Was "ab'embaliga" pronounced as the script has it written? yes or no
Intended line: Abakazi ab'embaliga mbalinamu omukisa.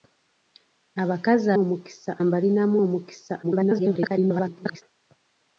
no